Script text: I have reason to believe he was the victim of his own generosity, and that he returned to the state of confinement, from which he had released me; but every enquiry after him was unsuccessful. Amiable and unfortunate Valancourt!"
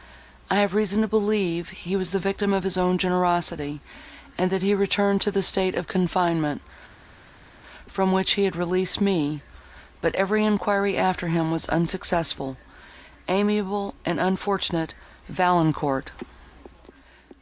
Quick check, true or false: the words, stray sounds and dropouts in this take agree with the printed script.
true